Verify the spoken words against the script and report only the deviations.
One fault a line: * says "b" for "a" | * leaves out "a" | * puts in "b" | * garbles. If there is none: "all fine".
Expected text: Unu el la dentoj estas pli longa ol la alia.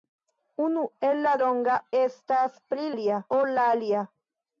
* says "longa" for "dentoj"
* says "alia" for "longa"